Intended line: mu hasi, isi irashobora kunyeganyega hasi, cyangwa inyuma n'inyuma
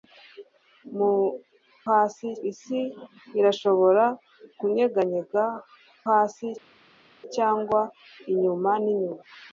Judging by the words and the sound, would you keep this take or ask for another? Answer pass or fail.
pass